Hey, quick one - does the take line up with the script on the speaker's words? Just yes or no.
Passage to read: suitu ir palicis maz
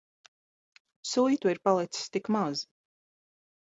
no